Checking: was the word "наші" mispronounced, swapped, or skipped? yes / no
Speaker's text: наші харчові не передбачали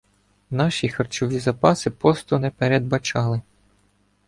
no